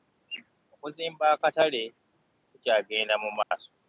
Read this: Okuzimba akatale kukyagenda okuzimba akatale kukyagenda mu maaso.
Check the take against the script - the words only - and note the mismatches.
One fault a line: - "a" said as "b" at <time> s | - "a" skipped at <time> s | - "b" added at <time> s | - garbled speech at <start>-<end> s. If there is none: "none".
- "okuzimba akatale kukyagenda" skipped at 3.1 s